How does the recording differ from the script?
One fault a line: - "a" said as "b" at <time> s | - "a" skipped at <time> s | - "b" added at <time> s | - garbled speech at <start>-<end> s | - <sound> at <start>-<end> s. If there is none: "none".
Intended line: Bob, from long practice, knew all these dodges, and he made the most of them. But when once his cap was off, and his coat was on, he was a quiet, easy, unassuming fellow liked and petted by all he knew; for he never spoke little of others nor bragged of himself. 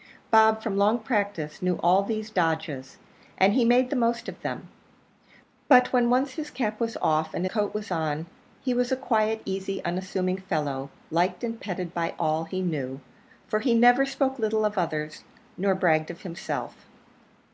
- "his" skipped at 7.5 s